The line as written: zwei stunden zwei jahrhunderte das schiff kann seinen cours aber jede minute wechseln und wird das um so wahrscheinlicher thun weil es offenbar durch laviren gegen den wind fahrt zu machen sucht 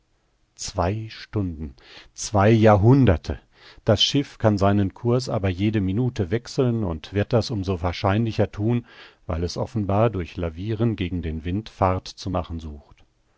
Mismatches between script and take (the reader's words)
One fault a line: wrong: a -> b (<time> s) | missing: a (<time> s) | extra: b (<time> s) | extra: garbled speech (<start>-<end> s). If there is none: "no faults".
no faults